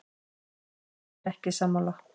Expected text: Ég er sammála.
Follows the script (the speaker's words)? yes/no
no